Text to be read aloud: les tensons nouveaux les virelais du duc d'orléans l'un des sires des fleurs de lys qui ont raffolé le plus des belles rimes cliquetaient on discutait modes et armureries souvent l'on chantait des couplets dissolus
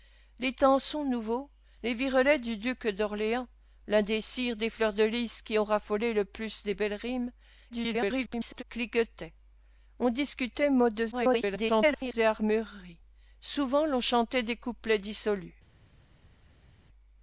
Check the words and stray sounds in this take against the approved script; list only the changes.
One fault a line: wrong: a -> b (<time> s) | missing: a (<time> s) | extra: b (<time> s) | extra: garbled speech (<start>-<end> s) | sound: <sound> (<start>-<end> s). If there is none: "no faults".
extra: garbled speech (7.7-8.6 s)
extra: garbled speech (11.1-12.1 s)